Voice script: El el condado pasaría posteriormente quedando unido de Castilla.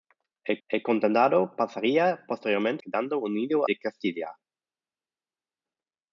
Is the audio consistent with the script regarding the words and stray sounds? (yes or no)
yes